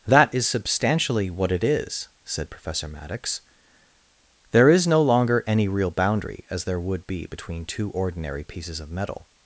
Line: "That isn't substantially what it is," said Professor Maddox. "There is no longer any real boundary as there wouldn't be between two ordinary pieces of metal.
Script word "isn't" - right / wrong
wrong